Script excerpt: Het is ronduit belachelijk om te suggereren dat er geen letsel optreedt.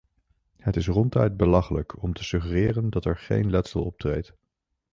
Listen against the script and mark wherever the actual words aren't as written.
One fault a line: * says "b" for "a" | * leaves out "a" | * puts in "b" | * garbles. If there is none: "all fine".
all fine